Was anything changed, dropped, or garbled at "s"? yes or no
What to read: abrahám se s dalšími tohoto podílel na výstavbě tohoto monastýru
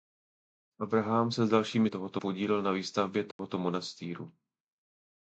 no